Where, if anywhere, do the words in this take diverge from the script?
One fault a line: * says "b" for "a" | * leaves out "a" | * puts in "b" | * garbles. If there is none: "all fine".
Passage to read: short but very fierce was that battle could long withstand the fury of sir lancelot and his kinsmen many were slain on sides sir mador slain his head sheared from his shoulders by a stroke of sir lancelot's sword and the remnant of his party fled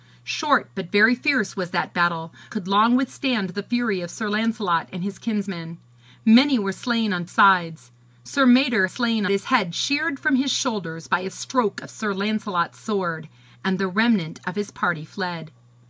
all fine